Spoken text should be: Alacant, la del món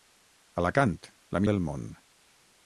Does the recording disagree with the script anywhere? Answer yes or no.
no